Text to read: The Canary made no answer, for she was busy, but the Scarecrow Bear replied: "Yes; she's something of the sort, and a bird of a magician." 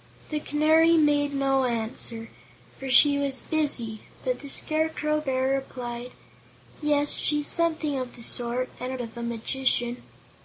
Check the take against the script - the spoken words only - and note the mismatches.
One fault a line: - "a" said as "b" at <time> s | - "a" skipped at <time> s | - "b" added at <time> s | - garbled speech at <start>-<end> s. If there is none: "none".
- "bird" skipped at 9.0 s